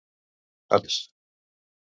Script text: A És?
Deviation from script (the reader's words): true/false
false